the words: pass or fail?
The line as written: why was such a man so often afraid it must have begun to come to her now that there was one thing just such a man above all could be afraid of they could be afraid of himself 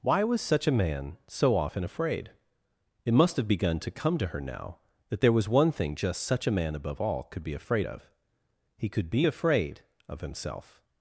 fail